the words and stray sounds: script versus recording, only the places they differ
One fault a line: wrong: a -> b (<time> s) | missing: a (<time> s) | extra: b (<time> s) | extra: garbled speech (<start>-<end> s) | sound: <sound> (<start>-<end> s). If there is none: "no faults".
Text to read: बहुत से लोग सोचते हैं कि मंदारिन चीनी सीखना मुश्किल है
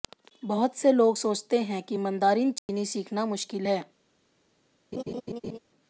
sound: dropout (2.6-2.7 s)
sound: laugh (4.9-5.6 s)